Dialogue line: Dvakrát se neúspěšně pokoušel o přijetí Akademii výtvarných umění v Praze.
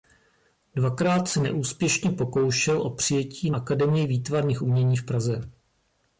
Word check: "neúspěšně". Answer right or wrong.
right